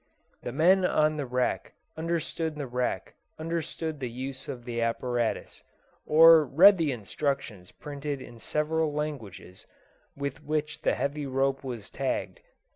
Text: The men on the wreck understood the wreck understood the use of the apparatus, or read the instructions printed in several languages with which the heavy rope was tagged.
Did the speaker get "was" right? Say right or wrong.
right